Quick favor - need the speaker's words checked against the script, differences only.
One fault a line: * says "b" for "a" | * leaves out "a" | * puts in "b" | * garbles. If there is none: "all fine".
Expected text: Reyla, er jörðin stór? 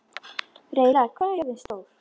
* puts in "hvað"